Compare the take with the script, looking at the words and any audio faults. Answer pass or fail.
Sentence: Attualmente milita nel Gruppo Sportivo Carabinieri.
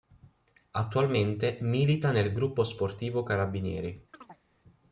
fail